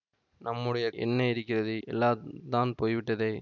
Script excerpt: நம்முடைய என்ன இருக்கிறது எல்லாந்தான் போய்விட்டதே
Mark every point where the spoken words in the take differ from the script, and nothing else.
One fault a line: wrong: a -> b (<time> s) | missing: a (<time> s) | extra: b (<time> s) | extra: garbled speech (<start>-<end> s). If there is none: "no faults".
no faults